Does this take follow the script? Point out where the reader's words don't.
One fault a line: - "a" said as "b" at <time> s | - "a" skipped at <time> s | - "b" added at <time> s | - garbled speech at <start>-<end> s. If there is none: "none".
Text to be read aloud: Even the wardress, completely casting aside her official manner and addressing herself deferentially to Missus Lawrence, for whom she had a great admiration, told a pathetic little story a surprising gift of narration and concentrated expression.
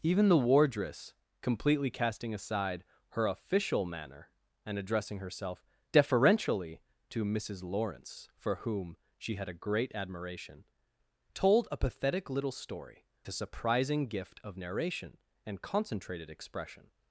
none